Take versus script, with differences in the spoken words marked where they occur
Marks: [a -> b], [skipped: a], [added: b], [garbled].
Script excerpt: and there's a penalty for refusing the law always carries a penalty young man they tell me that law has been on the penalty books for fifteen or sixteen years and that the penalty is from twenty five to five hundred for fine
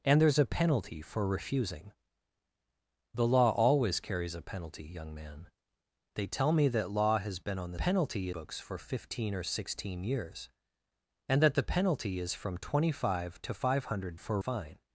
and there's a penalty for refusing the law always carries a penalty young man they tell me that law has been on the penalty books for fifteen or sixteen years and that the penalty is from twenty five to five hundred for fine